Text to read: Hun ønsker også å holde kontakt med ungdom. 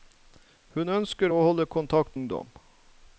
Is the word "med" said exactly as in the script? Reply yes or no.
no